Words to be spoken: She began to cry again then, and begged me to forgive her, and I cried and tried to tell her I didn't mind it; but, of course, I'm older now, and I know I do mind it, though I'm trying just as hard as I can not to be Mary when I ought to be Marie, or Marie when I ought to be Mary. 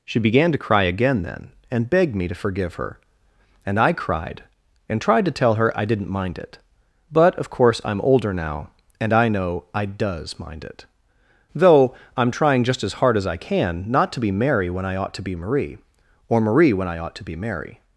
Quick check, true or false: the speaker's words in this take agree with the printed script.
false